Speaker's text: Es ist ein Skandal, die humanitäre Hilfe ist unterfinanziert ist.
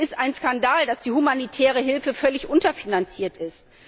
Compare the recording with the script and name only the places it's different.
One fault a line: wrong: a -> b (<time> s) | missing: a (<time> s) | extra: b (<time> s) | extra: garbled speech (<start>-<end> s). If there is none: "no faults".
extra: dass (0.9 s)
wrong: ist -> völlig (2.1 s)